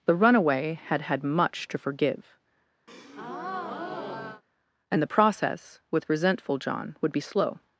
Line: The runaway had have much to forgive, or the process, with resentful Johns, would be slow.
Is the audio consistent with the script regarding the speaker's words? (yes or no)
no